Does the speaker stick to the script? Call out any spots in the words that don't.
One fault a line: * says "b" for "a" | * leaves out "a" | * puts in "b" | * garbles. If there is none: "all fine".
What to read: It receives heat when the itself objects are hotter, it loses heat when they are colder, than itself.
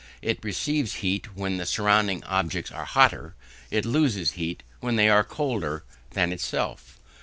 * says "surrounding" for "itself"